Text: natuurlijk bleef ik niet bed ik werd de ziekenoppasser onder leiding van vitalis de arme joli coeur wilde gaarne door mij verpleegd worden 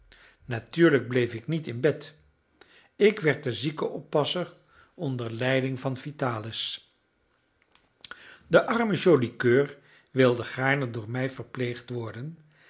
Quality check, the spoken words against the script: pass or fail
fail